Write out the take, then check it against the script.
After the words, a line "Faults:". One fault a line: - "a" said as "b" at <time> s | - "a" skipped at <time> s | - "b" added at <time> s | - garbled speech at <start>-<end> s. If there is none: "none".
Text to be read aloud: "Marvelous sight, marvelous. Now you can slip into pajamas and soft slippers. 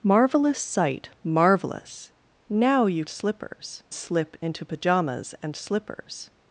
"Marvelous sight, marvelous. Now you slippers slip into pajamas and slippers.
Faults:
- "can" said as "slippers" at 3.1 s
- "soft" skipped at 5.6 s